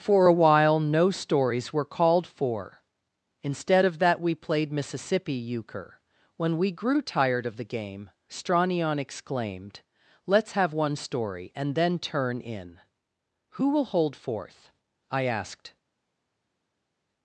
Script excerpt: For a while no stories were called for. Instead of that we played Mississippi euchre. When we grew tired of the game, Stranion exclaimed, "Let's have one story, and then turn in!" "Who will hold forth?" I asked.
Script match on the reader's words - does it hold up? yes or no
yes